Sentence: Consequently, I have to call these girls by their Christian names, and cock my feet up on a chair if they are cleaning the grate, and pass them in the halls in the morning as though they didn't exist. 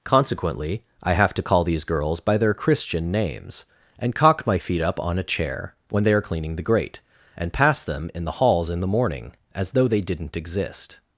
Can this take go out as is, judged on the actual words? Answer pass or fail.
fail